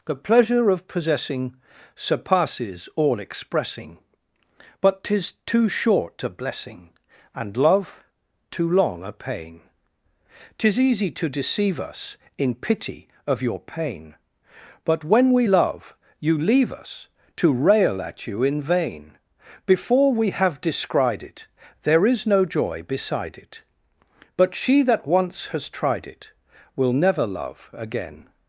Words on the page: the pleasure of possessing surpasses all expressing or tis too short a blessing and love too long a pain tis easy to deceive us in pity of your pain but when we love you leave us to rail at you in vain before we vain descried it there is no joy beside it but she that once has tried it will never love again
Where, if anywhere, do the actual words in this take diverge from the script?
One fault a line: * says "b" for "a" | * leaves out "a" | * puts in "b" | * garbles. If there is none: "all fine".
* says "but" for "or"
* says "have" for "vain"